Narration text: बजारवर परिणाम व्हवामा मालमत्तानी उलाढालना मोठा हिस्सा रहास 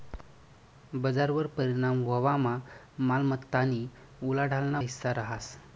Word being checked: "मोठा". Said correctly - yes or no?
no